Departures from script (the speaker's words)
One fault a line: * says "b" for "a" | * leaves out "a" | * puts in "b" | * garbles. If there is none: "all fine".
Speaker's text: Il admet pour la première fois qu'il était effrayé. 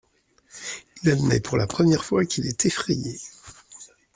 * says "est" for "était"